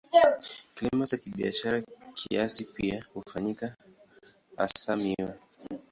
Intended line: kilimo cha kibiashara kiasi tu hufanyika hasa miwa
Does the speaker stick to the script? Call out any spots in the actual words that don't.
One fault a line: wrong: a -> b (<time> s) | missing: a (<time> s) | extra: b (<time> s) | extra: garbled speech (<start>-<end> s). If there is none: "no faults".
wrong: tu -> pia (2.6 s)